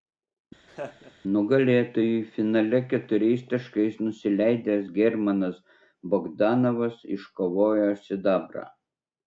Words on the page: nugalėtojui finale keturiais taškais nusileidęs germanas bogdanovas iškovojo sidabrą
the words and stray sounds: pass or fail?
fail